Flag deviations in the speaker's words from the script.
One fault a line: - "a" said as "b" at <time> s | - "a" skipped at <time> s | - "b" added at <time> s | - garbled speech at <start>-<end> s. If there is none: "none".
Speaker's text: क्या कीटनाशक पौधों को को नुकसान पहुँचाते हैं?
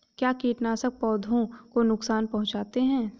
- "को" skipped at 1.8 s